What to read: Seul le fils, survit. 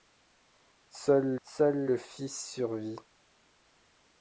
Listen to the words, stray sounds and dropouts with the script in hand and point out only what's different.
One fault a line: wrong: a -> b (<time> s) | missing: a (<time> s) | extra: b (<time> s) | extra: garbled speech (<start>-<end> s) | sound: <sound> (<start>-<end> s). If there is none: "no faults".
extra: seul (1.4 s)